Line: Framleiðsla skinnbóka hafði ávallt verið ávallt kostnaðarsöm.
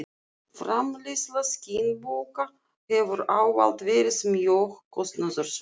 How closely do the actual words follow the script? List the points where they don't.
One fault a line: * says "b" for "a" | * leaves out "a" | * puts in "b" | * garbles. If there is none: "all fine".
* says "hefur" for "hafði"
* says "mjög" for "ávallt"